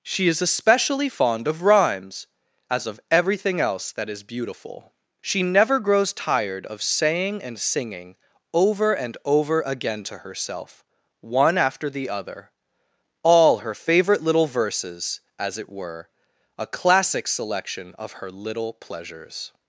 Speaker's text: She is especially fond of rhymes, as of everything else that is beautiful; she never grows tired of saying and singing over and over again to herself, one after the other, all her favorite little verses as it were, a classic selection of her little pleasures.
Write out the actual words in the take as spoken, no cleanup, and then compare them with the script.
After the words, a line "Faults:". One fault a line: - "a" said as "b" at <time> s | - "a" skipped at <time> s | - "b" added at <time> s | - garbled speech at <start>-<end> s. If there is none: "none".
She is especially fond of rhymes, as of everything else that is beautiful; she never grows tired of saying and singing over and over again to herself, one after the other, all her favorite little verses as it were, a classic selection of her little pleasures.
Faults:
none